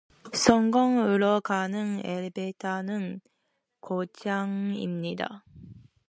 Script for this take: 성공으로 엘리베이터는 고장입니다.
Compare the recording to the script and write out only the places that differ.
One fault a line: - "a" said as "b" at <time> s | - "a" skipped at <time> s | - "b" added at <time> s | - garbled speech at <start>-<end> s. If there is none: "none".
- "가는" added at 1.4 s